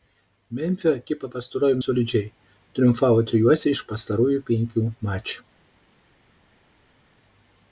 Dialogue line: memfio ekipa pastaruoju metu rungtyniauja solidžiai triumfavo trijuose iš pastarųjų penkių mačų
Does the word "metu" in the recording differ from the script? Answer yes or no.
yes